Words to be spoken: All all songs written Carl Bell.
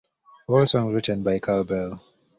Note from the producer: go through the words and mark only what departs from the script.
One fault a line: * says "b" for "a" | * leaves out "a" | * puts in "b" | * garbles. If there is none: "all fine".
* leaves out "all"
* puts in "by"